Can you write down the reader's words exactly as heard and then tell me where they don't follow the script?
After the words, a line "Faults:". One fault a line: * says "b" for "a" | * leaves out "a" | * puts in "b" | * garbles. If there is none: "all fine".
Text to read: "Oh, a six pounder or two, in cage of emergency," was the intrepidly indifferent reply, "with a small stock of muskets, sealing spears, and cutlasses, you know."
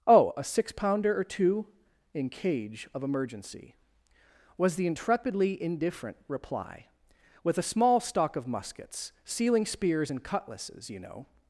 "Oh, a six pounder or two, in cage of emergency," was the intrepidly indifferent reply, "with a small stock of muskets, sealing spears, and cutlasses, you know."
Faults:
all fine